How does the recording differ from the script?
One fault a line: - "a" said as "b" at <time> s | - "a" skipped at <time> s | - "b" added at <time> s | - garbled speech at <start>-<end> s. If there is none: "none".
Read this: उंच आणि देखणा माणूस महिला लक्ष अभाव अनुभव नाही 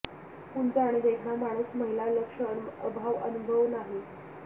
none